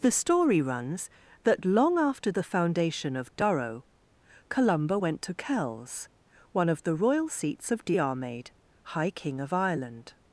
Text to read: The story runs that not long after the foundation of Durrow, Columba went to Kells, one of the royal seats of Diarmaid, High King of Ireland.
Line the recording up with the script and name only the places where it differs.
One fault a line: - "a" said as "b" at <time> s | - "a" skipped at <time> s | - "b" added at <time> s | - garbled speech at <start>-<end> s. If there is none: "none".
- "not" skipped at 1.6 s